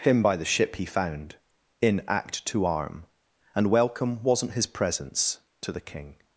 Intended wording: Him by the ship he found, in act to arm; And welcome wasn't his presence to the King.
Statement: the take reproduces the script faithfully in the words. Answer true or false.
true